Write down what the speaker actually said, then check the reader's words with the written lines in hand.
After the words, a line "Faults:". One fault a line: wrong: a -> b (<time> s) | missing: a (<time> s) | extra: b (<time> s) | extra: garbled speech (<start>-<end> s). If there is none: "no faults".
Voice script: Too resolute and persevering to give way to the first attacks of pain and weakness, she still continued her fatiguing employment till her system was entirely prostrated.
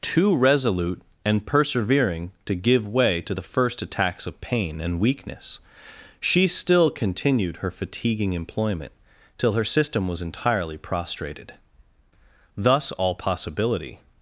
Too resolute and persevering to give way to the first attacks of pain and weakness, she still continued her fatiguing employment till her system was entirely prostrated. Thus all possibility
Faults:
extra: Thus all possibility (12.6 s)